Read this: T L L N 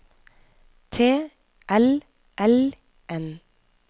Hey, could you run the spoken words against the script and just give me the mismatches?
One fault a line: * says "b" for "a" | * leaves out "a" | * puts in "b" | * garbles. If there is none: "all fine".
all fine